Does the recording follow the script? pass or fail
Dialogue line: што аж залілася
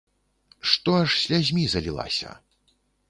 fail